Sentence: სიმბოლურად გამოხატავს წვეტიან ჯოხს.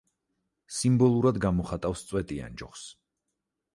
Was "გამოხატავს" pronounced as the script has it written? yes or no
yes